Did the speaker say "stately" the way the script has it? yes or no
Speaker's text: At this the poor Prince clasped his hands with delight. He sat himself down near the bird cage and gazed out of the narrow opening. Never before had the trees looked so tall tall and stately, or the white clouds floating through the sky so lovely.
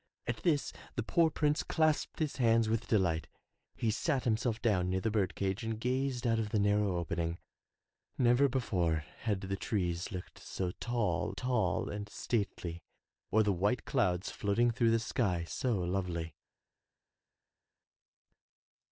yes